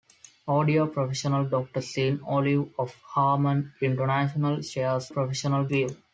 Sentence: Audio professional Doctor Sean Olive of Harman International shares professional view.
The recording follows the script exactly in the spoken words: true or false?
true